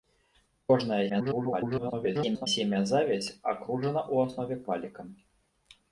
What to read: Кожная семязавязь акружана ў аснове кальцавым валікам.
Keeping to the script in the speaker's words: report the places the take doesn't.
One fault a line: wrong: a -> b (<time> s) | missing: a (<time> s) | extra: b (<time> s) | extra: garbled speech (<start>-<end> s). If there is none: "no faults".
extra: garbled speech (1.1-2.5 s)
missing: кальцавым (4.6 s)